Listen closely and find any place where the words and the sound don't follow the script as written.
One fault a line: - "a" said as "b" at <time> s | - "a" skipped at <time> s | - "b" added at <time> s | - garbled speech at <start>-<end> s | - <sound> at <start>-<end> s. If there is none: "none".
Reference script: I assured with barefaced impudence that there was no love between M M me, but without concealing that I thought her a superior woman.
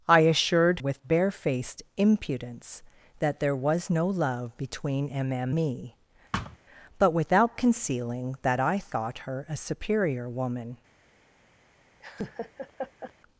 - thud at 6.3-6.6 s
- laugh at 12.0-13.1 s